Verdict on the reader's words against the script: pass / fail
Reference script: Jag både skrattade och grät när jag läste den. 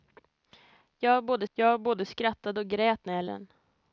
fail